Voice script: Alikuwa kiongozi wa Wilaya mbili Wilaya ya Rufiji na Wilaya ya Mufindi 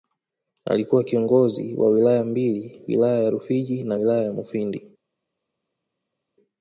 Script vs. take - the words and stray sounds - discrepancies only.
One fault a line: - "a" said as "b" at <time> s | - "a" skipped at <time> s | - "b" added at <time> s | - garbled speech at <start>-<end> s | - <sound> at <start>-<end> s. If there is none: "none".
none